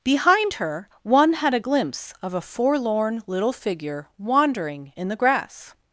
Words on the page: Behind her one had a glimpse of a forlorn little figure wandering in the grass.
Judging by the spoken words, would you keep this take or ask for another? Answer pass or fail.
pass